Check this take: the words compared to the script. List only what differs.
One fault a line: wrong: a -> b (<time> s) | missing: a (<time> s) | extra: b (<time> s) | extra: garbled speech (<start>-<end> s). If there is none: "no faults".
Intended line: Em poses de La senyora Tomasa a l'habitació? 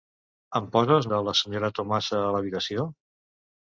no faults